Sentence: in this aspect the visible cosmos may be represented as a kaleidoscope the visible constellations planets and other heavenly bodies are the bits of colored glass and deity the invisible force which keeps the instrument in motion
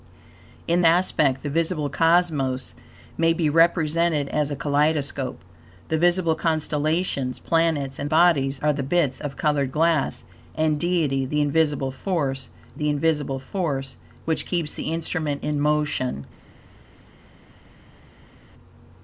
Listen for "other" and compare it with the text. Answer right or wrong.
wrong